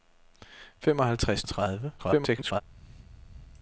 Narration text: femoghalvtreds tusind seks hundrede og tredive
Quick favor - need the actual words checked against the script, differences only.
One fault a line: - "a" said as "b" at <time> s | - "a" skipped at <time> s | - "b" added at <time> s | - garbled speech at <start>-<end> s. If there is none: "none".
- "tusind seks hundrede" skipped at 1.4 s
- garbled speech at 2.0-2.6 s